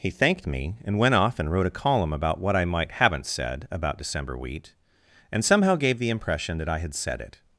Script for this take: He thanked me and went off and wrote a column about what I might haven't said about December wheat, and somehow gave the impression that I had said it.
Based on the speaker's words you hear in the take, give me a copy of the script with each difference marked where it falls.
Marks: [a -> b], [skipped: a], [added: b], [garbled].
He thanked me and went off and wrote a column about what I might haven't said about December wheat, and somehow gave the impression that I had said it.